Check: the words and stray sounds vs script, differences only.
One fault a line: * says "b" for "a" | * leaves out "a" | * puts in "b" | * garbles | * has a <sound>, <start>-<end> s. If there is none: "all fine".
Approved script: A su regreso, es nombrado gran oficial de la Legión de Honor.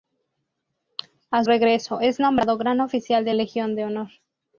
* leaves out "su"
* leaves out "la"